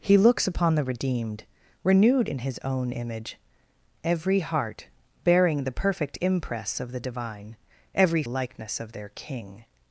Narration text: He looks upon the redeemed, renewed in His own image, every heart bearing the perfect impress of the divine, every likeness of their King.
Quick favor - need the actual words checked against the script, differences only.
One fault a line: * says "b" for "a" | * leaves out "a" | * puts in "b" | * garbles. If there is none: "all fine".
all fine